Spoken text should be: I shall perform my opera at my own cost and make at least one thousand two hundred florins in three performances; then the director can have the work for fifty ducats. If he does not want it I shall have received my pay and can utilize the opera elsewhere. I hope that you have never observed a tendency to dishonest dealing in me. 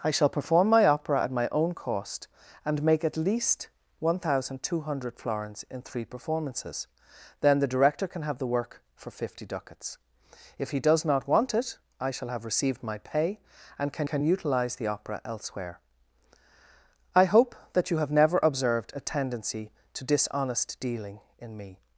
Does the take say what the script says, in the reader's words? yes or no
no